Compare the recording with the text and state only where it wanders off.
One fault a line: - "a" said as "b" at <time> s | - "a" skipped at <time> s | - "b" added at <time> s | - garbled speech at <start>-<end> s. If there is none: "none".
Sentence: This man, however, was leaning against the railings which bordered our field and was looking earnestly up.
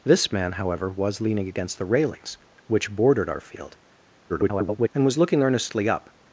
- garbled speech at 4.3-4.9 s